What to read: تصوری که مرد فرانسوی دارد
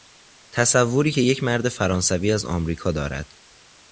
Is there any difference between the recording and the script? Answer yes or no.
yes